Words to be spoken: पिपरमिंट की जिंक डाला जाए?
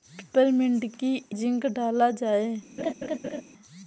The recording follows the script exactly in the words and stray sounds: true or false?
false